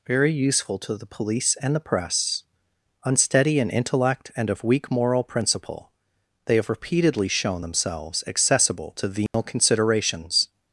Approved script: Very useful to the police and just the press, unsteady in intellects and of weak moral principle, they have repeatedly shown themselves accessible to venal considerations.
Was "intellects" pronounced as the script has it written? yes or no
no